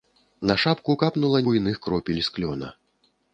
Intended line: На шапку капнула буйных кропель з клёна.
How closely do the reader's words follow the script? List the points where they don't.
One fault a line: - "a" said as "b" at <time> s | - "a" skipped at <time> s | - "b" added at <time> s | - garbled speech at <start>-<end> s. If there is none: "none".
none